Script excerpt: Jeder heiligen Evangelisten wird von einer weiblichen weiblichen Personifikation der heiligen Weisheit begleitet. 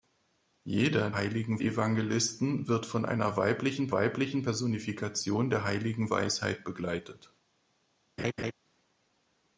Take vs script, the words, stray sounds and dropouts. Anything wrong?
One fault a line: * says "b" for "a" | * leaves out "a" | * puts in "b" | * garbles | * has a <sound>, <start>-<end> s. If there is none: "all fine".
* has a laugh, 8.2-8.5 s